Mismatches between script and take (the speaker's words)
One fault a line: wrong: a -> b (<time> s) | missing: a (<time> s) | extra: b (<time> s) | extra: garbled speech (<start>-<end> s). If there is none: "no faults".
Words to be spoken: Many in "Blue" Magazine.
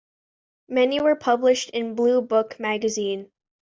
extra: were published (1.0 s)
extra: Book (2.2 s)